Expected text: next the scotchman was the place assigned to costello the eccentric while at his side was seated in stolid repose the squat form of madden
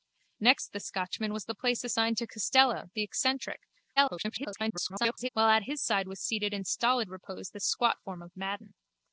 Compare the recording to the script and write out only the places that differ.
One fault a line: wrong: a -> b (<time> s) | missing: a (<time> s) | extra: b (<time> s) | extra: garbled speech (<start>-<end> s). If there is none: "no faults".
extra: garbled speech (4.0-5.3 s)